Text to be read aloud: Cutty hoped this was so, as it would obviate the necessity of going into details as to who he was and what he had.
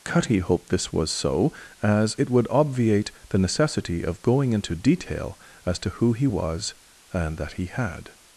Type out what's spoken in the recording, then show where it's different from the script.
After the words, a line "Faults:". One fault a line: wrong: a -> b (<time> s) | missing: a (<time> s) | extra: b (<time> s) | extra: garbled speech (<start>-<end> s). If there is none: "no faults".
Cutty hoped this was so, as it would obviate the necessity of going into detail as to who he was and that he had.
Faults:
wrong: details -> detail (4.7 s)
wrong: what -> that (7.4 s)